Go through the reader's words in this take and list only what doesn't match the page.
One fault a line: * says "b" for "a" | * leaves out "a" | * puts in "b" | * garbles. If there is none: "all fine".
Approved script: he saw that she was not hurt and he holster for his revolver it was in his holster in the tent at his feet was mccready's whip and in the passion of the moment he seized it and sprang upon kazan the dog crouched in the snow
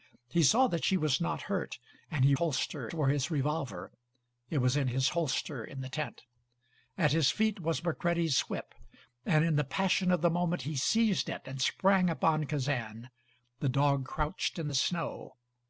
all fine